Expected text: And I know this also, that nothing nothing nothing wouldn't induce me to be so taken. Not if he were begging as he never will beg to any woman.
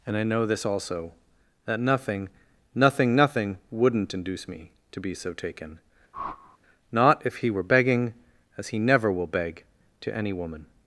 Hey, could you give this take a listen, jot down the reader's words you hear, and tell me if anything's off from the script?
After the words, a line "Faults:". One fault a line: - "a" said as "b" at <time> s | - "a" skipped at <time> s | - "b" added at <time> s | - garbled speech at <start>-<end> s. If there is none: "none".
And I know this also, that nothing nothing nothing wouldn't induce me to be so taken. Not if he were begging as he never will beg to any woman.
Faults:
none